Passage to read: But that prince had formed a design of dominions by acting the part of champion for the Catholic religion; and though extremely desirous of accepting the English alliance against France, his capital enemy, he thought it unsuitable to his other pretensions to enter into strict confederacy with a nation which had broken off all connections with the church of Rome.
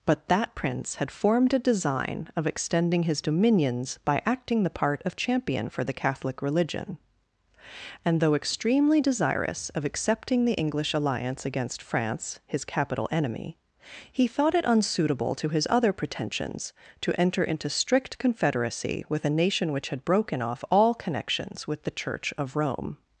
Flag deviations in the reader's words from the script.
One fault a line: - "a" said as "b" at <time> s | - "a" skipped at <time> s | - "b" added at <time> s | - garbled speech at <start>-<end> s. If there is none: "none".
- "extending his" added at 2.5 s